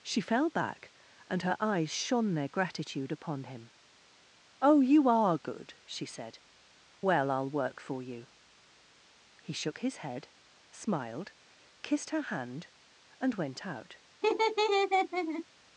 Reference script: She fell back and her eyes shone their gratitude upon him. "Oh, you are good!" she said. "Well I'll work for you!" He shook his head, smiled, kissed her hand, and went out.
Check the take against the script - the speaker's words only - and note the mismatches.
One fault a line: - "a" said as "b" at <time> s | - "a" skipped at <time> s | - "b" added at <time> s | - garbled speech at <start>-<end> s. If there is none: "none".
none